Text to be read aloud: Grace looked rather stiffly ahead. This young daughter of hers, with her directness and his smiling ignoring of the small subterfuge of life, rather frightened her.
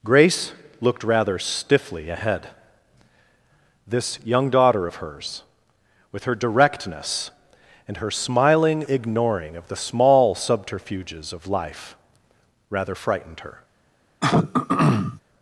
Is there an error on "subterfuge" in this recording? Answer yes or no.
yes